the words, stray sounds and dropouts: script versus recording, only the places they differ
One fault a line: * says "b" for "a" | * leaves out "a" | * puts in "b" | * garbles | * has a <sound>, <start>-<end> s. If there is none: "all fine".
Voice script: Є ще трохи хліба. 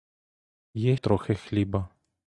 * leaves out "ще"